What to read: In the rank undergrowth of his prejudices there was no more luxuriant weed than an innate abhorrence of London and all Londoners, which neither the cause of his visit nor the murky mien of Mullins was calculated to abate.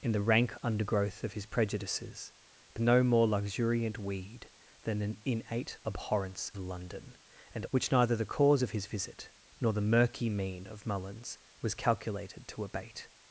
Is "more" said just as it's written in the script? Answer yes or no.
yes